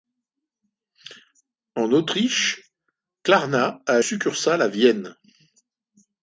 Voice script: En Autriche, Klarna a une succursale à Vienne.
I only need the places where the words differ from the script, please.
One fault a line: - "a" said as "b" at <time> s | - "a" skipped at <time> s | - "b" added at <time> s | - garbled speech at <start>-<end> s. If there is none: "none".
- "une" skipped at 4.0 s